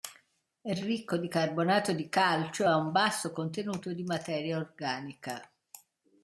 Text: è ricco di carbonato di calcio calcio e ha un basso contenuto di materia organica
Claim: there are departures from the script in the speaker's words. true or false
true